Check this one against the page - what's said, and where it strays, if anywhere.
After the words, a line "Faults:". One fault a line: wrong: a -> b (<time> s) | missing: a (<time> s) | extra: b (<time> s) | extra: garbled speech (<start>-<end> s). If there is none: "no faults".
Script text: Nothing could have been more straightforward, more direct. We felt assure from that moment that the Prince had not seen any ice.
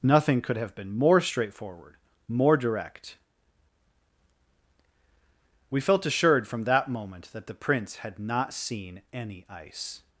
Nothing could have been more straightforward, more direct. We felt assured from that moment that the Prince had not seen any ice.
Faults:
wrong: assure -> assured (6.0 s)